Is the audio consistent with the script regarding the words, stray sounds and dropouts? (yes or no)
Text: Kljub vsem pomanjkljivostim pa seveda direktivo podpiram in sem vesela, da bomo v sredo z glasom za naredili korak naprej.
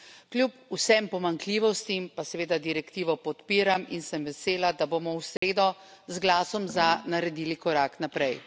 no